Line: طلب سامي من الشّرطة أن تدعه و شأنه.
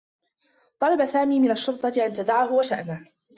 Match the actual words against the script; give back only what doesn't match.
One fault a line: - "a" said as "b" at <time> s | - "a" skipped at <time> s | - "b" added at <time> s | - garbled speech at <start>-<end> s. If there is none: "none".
none